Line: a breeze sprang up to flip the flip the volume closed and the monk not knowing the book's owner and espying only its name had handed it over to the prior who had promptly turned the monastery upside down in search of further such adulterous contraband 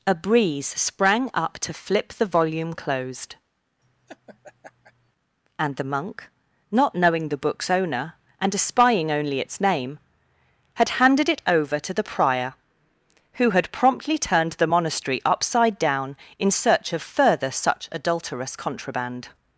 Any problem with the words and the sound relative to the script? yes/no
yes